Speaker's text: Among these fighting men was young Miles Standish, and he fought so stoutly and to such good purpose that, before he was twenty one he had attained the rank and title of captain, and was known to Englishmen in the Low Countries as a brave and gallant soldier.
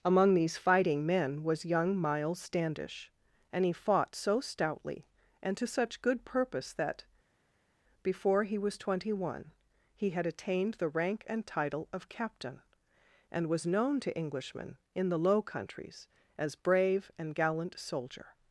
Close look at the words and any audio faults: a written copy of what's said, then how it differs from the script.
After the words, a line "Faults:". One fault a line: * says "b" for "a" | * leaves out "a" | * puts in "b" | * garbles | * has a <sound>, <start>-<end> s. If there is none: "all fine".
Among these fighting men was young Miles Standish, and he fought so stoutly and to such good purpose that, before he was twenty one he had attained the rank and title of captain, and was known to Englishmen in the Low Countries as brave and gallant soldier.
Faults:
* leaves out "a"